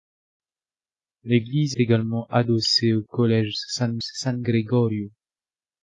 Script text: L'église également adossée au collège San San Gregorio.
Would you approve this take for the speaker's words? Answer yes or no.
yes